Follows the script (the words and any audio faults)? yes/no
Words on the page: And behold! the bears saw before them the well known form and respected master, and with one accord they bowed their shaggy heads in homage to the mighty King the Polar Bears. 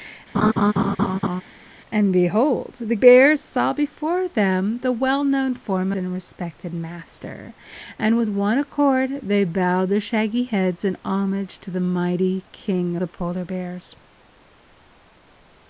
no